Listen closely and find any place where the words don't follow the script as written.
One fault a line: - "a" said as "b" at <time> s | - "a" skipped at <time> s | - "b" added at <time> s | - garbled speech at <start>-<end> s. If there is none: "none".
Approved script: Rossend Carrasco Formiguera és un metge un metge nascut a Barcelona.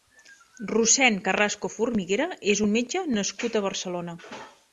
- "un metge" skipped at 3.0 s